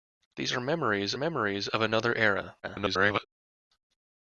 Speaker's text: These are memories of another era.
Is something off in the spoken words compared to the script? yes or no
yes